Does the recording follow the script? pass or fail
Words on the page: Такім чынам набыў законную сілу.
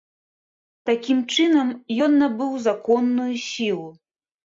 fail